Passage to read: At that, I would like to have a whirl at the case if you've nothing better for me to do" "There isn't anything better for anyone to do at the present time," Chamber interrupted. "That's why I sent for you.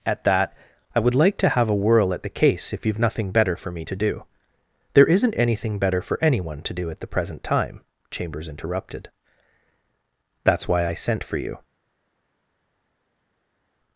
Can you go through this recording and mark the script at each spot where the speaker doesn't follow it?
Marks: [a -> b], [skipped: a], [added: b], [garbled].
At that, I would like to have a whirl at the case if you've nothing better for me to do" "There isn't anything better for anyone to do at the present time," [Chamber -> Chambers] interrupted. "That's why I sent for you.